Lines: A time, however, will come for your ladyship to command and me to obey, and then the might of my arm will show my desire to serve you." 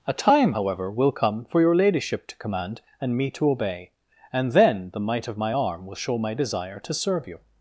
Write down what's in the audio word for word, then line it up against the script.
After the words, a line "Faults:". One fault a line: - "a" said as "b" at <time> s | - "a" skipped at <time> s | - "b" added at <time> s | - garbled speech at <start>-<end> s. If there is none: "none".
A time, however, will come for your ladyship to command and me to obey, and then the might of my arm will show my desire to serve you."
Faults:
none